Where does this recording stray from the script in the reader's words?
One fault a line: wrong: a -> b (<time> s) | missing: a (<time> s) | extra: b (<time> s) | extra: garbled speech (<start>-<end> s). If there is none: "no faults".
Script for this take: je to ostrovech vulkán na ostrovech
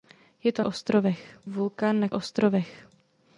no faults